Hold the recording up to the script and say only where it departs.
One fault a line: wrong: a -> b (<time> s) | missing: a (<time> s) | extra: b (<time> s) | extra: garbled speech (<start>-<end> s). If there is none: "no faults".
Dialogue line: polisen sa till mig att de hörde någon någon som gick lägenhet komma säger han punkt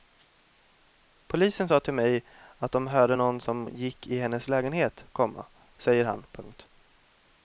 missing: någon (3.4 s)
extra: i hennes (4.1 s)